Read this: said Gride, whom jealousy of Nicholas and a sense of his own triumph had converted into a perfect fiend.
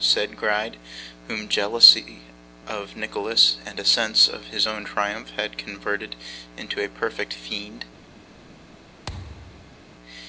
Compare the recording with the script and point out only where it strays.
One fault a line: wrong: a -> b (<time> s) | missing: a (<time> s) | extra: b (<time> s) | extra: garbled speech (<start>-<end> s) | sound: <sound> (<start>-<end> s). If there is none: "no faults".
sound: thud (9.1-9.8 s)